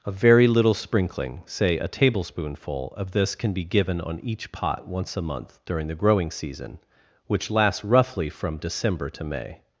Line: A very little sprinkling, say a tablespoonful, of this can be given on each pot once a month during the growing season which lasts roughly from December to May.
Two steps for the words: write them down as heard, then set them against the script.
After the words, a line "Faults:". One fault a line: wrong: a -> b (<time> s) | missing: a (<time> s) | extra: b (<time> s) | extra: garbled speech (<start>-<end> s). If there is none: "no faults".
A very little sprinkling, say a tablespoonful, of this can be given on each pot once a month during the growing season which lasts roughly from December to May.
Faults:
no faults